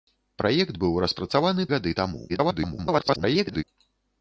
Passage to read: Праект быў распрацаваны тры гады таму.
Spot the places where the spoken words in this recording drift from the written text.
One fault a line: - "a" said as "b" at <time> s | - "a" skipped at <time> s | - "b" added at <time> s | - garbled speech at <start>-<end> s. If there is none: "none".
- "тры" skipped at 1.7 s
- garbled speech at 2.3-3.6 s